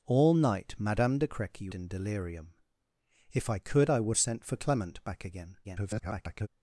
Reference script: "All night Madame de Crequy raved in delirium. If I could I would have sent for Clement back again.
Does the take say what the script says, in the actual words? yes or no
no